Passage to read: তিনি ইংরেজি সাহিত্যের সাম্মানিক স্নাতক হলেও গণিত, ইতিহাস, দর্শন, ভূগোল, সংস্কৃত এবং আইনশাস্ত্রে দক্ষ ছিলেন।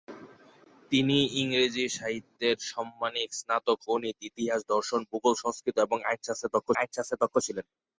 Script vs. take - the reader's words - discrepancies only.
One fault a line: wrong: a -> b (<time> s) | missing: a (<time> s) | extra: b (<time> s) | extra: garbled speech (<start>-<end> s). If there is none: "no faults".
missing: হলেও (3.8 s)
extra: আইনশাস্ত্রে দক্ষ (6.7 s)